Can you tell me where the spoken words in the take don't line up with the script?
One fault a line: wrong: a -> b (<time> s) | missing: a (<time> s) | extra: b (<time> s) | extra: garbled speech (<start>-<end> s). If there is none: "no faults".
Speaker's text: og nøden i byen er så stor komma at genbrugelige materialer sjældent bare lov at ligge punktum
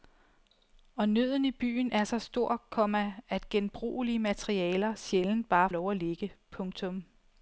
no faults